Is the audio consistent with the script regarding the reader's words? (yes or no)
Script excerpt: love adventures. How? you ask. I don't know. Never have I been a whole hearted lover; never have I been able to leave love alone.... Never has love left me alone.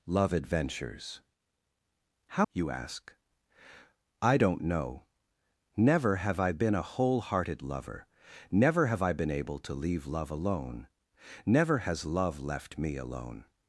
yes